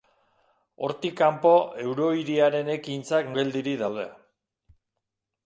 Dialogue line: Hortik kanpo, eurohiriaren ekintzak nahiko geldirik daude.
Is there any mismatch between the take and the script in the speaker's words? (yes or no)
yes